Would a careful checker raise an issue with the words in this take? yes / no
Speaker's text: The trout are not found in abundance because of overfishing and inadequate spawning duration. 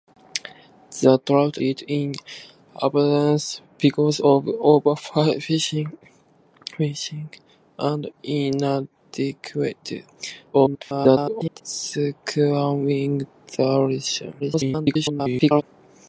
yes